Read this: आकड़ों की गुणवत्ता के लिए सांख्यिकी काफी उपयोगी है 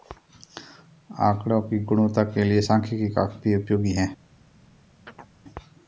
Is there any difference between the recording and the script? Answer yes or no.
no